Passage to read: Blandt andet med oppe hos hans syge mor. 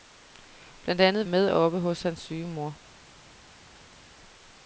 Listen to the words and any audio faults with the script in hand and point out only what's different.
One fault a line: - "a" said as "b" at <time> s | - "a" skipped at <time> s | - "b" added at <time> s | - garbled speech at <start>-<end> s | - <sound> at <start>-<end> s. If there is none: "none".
none